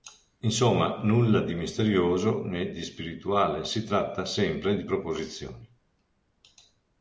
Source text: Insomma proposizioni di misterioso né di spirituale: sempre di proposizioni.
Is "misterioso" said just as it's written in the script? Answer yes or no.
yes